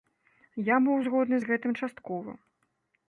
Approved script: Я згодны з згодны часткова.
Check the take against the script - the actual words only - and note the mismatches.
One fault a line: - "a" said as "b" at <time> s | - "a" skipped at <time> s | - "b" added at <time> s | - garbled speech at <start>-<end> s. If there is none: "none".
- "быў" added at 0.8 s
- "згодны" said as "гэтым" at 1.5 s